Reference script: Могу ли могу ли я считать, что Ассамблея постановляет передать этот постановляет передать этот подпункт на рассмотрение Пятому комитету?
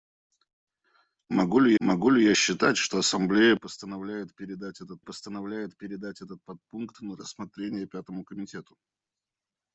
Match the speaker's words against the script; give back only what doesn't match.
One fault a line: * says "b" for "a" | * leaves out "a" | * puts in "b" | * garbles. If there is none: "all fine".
all fine